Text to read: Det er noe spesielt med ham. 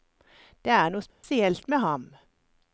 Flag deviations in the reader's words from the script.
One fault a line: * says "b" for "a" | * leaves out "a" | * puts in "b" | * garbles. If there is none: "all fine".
all fine